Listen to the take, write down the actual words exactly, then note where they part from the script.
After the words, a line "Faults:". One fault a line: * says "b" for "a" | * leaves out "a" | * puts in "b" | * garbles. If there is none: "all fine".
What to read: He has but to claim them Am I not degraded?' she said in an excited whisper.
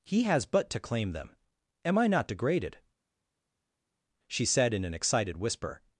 He has but to claim them Am I not degraded?' she said in an excited whisper.
Faults:
all fine